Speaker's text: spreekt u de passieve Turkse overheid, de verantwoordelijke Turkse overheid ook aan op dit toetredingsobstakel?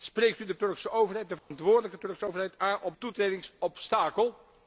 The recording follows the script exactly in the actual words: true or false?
false